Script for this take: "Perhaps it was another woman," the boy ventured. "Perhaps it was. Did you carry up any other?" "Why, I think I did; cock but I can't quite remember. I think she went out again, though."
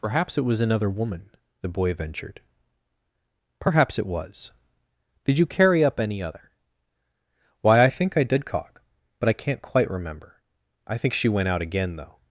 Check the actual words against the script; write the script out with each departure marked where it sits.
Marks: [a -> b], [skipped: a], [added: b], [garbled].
"Perhaps it was another woman," the boy ventured. "Perhaps it was. Did you carry up any other?" "Why, I think I did; cock but I can't quite remember. I think she went out again, though."